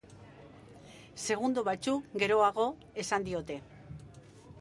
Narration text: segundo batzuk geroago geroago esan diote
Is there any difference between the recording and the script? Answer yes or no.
yes